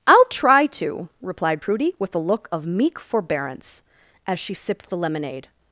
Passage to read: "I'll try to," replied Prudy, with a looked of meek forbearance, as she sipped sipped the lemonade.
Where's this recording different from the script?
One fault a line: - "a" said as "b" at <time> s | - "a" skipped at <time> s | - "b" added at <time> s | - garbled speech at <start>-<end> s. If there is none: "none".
- "looked" said as "look" at 2.2 s
- "sipped" skipped at 4.9 s